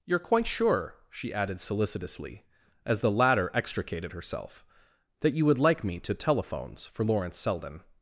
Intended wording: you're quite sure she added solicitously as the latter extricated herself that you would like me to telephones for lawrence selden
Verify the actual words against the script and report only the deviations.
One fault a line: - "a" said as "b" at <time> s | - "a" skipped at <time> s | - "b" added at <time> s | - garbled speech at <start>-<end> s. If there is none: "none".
none